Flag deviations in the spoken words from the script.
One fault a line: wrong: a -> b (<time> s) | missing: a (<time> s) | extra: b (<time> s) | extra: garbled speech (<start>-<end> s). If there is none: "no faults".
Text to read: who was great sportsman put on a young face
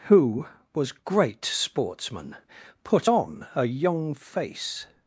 no faults